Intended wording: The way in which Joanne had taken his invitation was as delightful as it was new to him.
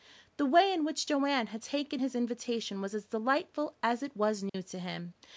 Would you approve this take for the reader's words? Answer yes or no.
yes